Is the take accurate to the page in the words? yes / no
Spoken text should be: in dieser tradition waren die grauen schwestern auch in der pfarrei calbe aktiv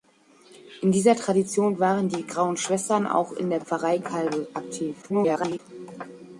no